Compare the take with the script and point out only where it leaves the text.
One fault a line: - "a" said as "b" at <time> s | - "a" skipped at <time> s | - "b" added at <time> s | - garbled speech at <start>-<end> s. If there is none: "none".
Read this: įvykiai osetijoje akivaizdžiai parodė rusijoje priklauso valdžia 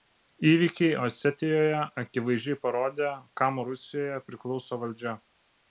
- "kam" added at 3.4 s